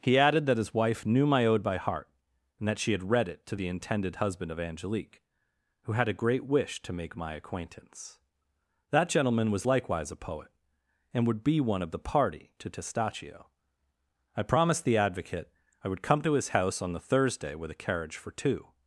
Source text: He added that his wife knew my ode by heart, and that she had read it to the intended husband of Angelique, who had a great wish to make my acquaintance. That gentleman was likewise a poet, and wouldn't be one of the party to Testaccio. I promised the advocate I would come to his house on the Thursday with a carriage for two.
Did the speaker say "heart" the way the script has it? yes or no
yes